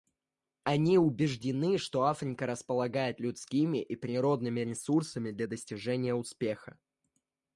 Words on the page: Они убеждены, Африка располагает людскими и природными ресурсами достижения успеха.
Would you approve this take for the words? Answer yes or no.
no